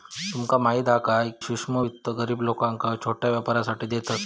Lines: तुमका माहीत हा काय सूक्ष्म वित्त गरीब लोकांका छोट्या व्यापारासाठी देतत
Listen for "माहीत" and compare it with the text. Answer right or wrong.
right